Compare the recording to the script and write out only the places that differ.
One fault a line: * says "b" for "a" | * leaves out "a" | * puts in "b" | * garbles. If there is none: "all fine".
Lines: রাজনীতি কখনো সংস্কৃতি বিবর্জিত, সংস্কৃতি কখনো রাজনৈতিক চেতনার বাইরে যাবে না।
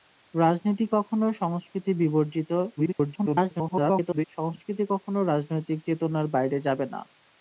* garbles